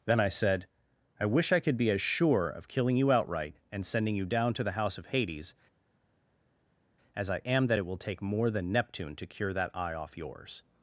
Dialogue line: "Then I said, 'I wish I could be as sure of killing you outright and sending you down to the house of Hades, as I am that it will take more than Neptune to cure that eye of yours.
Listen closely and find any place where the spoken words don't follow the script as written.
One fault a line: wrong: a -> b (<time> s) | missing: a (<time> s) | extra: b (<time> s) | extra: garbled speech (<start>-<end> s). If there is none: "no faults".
wrong: of -> off (9.9 s)